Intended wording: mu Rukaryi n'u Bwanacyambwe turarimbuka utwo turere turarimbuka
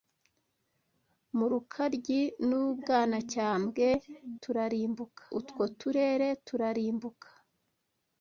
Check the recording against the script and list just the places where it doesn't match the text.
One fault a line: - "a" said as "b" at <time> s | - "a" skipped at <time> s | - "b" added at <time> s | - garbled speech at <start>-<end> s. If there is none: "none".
none